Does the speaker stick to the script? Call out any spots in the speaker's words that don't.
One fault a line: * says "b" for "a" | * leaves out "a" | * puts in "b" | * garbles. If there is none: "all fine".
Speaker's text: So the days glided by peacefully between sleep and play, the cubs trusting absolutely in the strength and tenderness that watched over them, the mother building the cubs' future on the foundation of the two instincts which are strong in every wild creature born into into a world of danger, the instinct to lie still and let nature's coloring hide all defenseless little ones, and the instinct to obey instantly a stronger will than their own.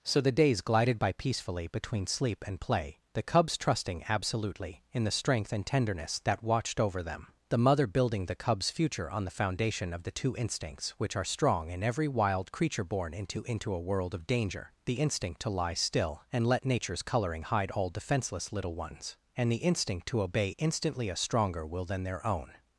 all fine